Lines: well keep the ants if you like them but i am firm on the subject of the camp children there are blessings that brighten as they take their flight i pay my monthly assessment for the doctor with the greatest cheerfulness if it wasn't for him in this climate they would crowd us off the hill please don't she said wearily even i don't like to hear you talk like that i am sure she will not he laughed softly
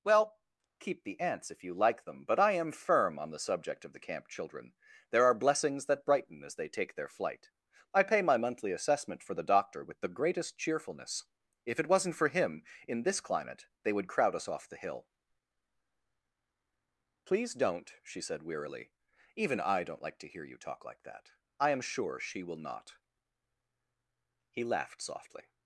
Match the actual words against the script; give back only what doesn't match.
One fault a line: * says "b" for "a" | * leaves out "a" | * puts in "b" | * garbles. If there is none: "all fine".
all fine